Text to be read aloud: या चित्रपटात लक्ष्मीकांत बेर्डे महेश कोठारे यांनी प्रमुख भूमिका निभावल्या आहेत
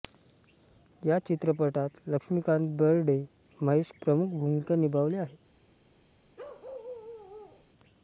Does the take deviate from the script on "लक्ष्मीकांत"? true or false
false